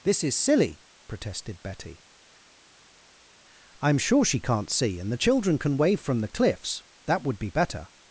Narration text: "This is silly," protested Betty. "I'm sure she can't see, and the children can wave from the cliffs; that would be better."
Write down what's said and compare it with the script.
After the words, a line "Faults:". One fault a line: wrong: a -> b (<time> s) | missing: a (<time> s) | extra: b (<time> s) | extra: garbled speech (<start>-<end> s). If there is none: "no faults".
"This is silly," protested Betty. "I'm sure she can't see, and the children can wave from the cliffs; that would be better."
Faults:
no faults